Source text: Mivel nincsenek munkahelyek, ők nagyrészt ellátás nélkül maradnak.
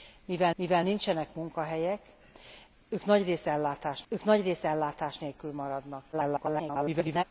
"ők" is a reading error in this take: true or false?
false